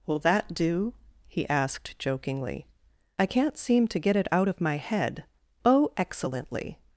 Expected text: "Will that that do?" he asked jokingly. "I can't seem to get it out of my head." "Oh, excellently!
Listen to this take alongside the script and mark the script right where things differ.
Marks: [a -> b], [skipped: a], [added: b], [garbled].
"Will that [skipped: that] do?" he asked jokingly. "I can't seem to get it out of my head." "Oh, excellently!